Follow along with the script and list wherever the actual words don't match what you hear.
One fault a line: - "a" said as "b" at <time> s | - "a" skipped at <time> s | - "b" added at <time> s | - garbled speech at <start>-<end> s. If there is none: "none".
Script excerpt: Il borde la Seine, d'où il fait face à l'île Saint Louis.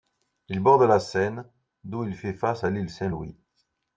none